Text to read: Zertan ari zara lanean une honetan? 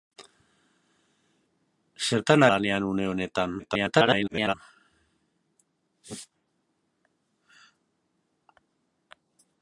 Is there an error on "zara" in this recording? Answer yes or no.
yes